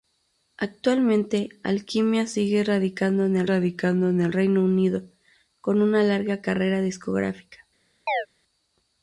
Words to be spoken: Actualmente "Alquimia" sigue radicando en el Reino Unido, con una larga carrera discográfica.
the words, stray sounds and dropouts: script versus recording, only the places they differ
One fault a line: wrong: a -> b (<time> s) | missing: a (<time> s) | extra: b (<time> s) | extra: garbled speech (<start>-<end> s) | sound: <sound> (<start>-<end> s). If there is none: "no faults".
extra: radicando en el (3.4 s)
sound: chirp (8.1-8.3 s)